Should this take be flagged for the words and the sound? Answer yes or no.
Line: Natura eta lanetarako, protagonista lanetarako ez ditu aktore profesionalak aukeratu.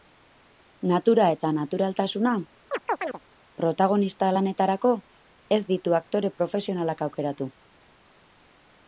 yes